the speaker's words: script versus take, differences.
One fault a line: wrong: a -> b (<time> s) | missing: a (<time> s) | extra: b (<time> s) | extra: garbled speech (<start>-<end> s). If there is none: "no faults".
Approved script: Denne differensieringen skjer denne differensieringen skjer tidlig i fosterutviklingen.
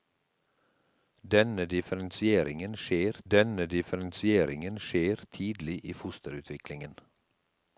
no faults